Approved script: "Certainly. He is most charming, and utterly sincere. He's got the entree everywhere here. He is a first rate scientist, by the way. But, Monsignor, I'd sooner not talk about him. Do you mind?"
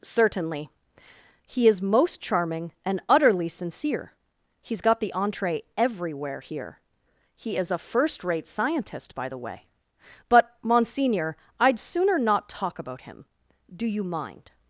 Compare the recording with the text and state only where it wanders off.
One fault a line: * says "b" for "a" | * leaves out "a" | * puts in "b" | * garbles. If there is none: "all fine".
all fine